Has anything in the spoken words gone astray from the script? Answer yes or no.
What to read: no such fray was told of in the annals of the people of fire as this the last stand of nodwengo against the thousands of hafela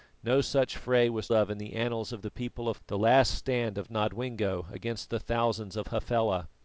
yes